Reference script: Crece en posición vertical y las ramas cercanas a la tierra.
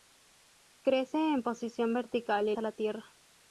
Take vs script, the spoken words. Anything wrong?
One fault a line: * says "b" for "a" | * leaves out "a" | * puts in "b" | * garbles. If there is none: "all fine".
* leaves out "las ramas cercanas"